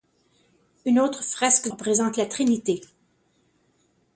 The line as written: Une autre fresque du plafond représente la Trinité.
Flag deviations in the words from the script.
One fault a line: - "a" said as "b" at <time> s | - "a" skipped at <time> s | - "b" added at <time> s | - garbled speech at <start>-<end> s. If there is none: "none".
- "du plafond" skipped at 1.7 s